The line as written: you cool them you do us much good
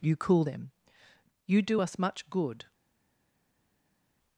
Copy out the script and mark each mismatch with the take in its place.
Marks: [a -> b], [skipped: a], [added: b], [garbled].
you cool them you do us much good